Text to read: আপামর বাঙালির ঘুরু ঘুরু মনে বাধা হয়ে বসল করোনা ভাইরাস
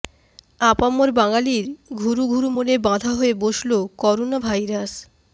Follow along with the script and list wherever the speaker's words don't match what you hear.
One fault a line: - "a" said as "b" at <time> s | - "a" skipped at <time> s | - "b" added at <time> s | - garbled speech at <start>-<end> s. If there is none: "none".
none